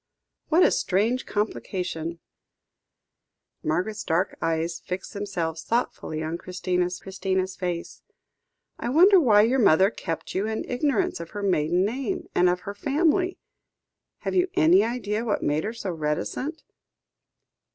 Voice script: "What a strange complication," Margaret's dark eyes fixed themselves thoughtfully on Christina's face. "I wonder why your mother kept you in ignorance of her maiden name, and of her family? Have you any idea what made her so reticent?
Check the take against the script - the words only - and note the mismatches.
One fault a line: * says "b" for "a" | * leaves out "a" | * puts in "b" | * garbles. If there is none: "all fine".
* puts in "Christina's"